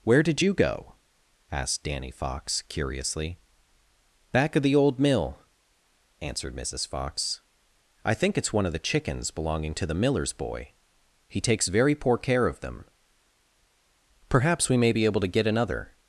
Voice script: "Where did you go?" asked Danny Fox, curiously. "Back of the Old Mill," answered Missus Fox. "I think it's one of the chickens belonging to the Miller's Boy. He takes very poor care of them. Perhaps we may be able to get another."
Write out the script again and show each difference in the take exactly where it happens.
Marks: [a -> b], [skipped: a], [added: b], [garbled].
"Where did you go?" asked Danny Fox, curiously. "Back of the Old Mill," answered Missus Fox. "I think it's one of the chickens belonging to the Miller's Boy. He takes very poor care of them. Perhaps we may be able to get another."